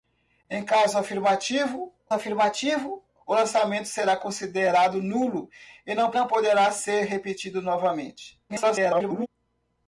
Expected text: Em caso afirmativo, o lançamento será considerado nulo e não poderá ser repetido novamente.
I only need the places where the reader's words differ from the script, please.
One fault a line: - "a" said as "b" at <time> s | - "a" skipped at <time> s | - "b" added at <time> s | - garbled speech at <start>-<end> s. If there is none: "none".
- "afirmativo" added at 2.1 s
- "não" added at 6.1 s
- garbled speech at 8.5-9.3 s